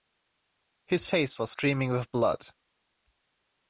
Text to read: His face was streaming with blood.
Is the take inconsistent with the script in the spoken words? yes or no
no